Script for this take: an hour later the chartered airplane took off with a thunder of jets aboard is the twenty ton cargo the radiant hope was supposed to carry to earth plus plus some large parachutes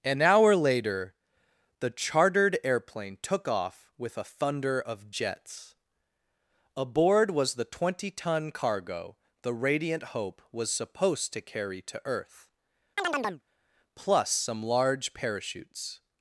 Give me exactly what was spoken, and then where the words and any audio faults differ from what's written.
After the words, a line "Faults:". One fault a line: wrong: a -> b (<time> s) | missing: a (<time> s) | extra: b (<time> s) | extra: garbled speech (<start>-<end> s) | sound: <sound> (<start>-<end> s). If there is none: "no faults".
an hour later the chartered airplane took off with a thunder of jets aboard was the twenty ton cargo the radiant hope was supposed to carry to earth plus some large parachutes
Faults:
wrong: is -> was (7.3 s)
sound: chirp (13.0-13.4 s)
missing: plus (14.3 s)